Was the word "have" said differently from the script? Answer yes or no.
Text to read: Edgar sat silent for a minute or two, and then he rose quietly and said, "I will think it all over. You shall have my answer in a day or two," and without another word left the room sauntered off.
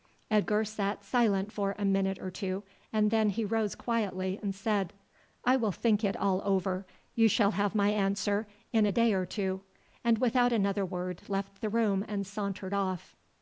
no